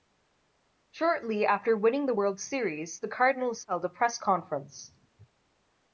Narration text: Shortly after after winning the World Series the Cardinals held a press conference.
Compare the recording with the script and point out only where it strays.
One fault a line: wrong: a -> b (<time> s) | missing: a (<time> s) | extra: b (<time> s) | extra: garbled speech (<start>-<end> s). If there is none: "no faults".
missing: after (1.8 s)